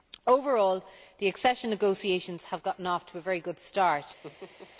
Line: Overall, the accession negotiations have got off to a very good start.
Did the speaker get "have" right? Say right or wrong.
right